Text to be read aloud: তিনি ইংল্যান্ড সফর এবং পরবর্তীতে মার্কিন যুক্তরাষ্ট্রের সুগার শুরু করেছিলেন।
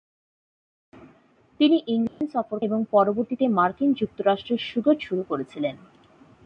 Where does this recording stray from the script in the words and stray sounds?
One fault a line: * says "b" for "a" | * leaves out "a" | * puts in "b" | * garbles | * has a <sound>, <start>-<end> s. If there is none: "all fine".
* has a dropout, 2.1-2.2 s